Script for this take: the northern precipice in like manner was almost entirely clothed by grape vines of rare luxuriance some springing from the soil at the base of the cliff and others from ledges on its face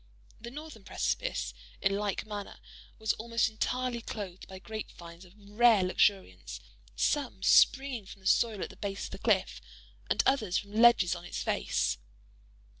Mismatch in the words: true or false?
false